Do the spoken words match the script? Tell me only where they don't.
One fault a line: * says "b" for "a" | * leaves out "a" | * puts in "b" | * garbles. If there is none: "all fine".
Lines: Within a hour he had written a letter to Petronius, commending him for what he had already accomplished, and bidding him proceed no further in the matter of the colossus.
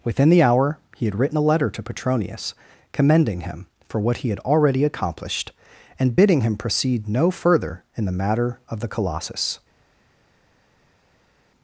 * says "the" for "a"